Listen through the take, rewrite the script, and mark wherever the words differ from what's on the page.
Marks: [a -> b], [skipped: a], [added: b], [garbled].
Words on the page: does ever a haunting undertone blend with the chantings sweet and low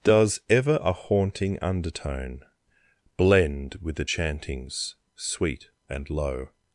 does ever a haunting undertone blend with the chantings sweet and low